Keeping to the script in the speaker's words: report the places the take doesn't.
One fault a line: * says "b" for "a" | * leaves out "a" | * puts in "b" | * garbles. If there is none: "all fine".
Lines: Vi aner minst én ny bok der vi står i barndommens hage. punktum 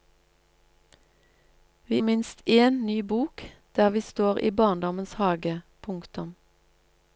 * leaves out "aner"